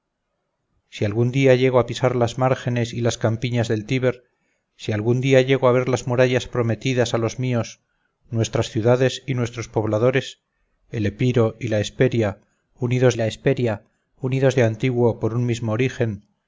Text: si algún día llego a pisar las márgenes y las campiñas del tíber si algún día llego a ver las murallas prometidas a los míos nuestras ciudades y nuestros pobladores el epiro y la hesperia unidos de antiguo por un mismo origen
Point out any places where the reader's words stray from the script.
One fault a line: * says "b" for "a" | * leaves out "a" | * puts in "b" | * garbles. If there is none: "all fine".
* puts in "la hesperia unidos"